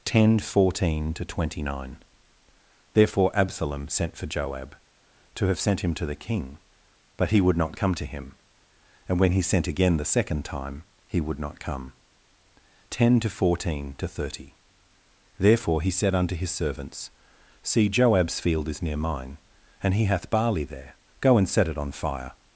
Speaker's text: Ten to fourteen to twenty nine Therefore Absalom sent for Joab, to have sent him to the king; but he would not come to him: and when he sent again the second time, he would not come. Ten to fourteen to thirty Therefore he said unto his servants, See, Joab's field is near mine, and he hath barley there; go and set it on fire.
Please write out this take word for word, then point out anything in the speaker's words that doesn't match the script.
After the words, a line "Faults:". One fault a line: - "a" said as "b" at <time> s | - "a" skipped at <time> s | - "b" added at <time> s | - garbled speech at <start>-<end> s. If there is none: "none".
Ten fourteen to twenty nine Therefore Absalom sent for Joab, to have sent him to the king; but he would not come to him: and when he sent again the second time, he would not come. Ten to fourteen to thirty Therefore he said unto his servants, See, Joab's field is near mine, and he hath barley there; go and set it on fire.
Faults:
- "to" skipped at 0.4 s